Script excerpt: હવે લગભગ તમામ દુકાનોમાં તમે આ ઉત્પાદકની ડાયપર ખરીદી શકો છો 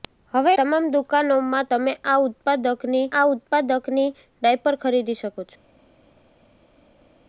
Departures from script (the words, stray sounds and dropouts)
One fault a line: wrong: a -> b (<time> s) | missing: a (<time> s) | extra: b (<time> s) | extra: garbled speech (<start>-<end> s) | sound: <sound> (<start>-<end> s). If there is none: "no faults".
missing: લગભગ (0.5 s)
extra: આ ઉત્પાદકની (3.1 s)